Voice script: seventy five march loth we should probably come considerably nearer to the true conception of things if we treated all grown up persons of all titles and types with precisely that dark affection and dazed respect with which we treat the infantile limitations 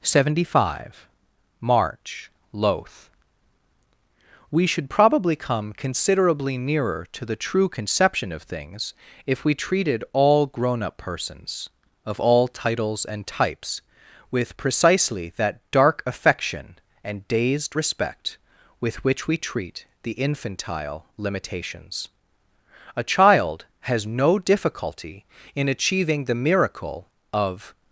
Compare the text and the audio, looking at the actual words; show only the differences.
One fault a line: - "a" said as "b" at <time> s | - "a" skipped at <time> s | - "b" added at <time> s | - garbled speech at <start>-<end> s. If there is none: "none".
- "a child has no difficulty in achieving the miracle of" added at 22.9 s